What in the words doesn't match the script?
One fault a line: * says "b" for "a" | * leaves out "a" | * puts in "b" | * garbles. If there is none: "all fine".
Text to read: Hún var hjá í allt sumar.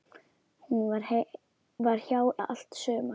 all fine